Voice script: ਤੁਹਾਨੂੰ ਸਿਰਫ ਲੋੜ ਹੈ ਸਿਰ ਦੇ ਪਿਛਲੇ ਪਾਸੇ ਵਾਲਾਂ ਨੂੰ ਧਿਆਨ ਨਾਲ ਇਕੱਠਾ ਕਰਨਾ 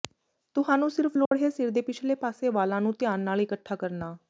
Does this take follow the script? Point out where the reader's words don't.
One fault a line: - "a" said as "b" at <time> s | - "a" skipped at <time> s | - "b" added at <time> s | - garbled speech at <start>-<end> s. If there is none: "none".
none